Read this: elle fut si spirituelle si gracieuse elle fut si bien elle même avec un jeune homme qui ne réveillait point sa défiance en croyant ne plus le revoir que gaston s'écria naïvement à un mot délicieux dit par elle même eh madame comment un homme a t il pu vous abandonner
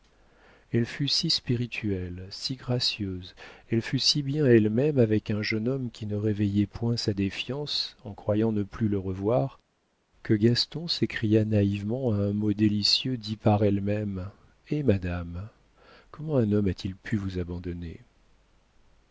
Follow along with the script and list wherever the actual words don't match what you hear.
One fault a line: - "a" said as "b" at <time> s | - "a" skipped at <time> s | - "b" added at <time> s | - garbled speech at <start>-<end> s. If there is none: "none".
none